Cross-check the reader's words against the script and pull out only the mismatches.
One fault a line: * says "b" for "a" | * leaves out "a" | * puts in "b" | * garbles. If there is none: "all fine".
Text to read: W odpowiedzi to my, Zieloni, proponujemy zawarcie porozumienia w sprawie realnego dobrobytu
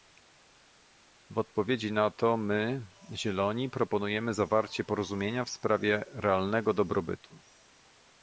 * puts in "na"